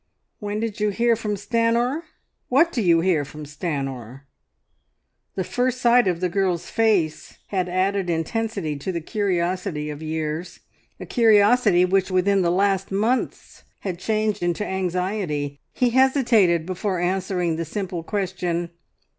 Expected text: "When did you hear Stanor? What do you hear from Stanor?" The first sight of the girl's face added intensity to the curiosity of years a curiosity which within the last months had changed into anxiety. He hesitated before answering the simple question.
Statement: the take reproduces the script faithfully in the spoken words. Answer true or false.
false